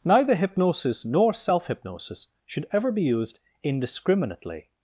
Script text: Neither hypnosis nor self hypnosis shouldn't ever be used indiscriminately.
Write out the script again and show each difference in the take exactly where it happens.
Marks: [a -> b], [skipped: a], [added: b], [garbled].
Neither hypnosis nor self hypnosis [shouldn't -> should] ever be used indiscriminately.